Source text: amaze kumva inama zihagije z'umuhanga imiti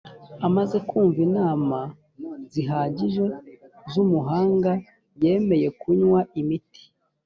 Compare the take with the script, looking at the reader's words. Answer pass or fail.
fail